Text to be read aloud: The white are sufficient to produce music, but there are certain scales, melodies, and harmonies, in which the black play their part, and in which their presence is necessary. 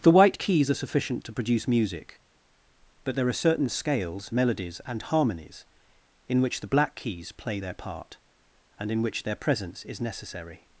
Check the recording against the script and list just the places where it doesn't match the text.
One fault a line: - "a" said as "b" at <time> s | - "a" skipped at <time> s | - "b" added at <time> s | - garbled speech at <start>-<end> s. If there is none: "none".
- "keys" added at 0.4 s
- "keys" added at 6.9 s